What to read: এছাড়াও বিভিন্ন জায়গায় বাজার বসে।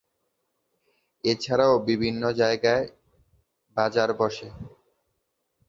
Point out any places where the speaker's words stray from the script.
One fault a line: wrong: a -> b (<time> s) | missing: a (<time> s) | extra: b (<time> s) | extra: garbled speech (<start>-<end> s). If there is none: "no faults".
no faults